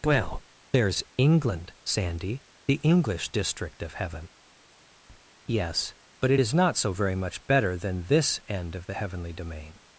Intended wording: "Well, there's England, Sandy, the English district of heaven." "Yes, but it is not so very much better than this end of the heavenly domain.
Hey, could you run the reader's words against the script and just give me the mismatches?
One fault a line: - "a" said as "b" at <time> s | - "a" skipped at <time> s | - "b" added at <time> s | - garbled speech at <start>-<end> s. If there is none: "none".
none